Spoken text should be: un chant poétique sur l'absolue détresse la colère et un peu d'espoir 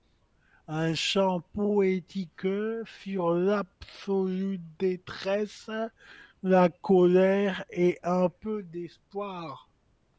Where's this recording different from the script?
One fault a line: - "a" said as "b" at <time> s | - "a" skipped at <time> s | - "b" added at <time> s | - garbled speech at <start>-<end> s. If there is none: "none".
none